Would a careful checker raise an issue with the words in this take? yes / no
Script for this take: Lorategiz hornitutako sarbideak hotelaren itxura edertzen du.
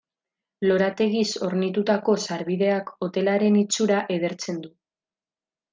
no